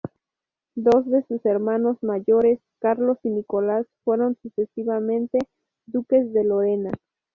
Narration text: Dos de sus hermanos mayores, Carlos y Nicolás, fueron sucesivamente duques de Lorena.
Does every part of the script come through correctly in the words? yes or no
yes